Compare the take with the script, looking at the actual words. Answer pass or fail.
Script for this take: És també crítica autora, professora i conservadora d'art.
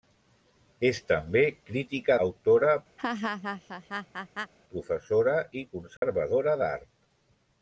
pass